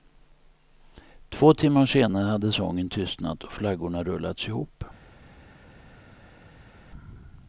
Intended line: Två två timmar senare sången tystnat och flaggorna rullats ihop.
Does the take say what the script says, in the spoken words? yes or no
no